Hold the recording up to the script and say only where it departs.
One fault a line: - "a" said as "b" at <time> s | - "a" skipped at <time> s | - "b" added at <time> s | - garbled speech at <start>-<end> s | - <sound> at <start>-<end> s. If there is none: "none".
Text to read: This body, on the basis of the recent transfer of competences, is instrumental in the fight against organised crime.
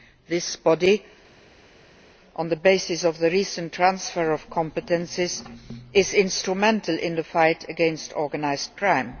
none